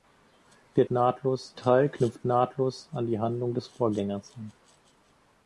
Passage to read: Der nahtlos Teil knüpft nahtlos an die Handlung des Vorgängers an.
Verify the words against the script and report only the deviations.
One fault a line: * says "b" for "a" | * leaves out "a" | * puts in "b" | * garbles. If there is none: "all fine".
all fine